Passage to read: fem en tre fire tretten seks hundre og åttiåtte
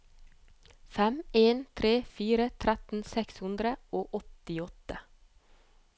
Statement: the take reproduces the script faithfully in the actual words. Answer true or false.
true